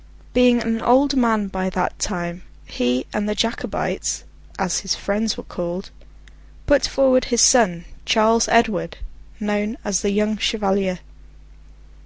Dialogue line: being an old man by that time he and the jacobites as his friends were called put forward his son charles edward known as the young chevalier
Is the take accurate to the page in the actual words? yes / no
yes